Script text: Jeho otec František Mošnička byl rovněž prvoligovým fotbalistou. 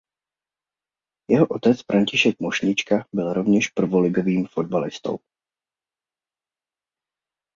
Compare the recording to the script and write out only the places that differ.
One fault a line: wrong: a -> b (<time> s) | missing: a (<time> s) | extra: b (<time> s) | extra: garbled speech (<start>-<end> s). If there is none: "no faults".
no faults